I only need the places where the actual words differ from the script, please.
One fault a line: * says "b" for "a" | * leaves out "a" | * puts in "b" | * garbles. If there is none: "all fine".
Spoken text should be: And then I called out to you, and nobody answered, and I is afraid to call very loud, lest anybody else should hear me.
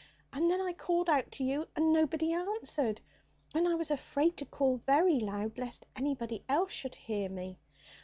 * says "was" for "is"